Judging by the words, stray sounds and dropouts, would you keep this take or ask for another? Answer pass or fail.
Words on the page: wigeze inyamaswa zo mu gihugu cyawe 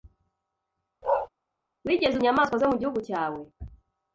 fail